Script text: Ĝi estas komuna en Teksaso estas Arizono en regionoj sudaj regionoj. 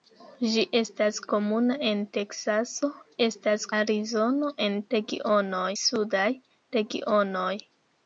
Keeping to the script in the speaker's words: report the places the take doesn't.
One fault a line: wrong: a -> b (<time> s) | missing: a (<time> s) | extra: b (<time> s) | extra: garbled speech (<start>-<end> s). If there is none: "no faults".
no faults